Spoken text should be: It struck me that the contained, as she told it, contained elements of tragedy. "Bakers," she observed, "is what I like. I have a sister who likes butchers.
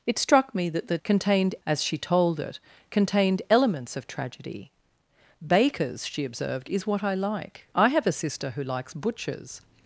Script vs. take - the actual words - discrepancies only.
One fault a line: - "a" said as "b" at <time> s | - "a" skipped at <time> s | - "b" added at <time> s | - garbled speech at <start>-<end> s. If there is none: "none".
none